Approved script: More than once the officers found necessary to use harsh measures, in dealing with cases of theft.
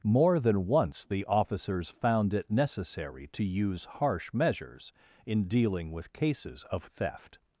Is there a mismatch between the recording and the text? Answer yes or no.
yes